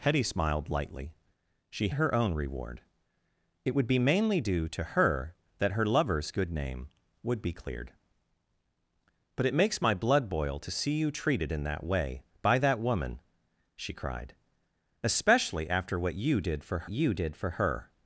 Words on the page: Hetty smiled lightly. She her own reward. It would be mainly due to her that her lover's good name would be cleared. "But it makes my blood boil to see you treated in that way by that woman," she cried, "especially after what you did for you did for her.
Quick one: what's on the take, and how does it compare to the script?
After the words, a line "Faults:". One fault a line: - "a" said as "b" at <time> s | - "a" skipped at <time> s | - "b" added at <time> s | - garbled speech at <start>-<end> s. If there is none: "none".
Hetty smiled lightly. She her own reward. It would be mainly due to her that her lover's good name would be cleared. "But it makes my blood boil to see you treated in that way by that woman," she cried, "especially after what you did for you did for her.
Faults:
none